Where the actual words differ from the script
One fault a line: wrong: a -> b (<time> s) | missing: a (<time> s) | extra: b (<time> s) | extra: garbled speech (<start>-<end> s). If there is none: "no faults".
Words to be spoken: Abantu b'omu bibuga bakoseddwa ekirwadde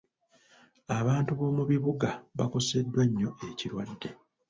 extra: nnyo (3.1 s)